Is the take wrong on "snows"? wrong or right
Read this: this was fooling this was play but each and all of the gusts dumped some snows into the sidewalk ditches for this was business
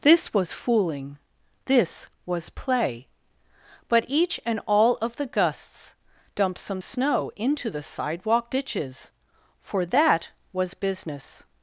wrong